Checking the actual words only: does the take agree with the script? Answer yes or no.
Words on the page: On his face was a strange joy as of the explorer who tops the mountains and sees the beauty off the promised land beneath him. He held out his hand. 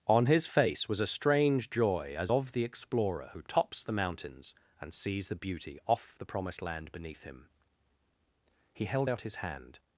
yes